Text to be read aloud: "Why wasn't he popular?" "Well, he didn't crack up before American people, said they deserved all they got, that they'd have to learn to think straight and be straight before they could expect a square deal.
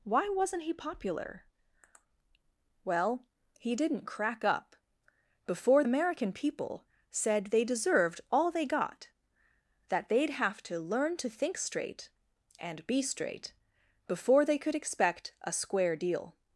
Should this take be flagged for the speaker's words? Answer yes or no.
no